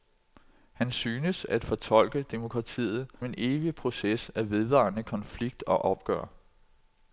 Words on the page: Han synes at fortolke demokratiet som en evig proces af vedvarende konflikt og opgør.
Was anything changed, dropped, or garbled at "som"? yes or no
yes